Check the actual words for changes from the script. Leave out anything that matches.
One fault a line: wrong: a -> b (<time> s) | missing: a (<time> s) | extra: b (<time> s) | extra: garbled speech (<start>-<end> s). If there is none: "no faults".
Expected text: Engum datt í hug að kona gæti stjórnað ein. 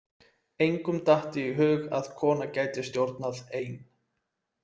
no faults